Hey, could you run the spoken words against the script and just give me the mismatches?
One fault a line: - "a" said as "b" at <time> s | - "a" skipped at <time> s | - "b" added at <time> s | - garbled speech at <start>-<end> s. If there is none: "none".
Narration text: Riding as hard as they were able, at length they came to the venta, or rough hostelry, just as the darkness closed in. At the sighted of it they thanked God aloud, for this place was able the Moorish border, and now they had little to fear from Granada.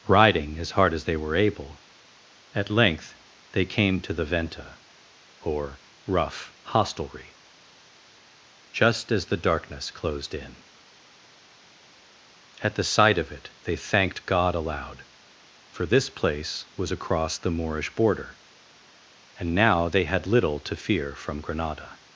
- "sighted" said as "sight" at 12.8 s
- "able" said as "across" at 16.9 s